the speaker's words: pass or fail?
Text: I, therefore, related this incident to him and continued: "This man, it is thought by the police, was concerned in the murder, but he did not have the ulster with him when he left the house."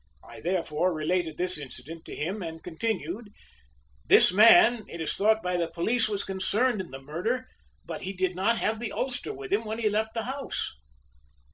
pass